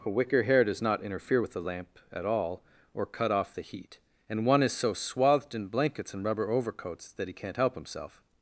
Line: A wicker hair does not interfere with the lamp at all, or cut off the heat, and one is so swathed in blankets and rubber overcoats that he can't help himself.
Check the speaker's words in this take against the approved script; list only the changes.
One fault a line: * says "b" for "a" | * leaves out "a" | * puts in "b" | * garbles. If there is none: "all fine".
all fine